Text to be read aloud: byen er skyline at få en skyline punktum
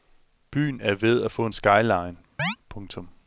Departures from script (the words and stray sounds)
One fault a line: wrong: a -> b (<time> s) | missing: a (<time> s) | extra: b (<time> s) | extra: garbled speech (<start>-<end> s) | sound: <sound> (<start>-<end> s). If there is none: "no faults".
wrong: skyline -> ved (0.9 s)
sound: chirp (2.4-2.6 s)